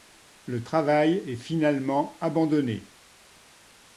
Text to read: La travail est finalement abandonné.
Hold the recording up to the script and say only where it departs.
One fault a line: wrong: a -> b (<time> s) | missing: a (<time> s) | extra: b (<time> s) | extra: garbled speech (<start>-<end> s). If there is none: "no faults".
wrong: La -> Le (0.5 s)